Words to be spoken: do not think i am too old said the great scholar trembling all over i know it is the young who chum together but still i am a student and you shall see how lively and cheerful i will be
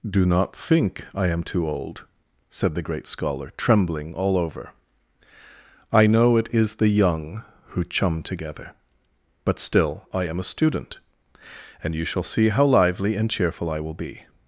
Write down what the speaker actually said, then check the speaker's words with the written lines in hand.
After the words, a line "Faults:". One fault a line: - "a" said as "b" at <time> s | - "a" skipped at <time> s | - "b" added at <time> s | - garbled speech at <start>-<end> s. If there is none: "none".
do not think i am too old said the great scholar trembling all over i know it is the young who chum together but still i am a student and you shall see how lively and cheerful i will be
Faults:
none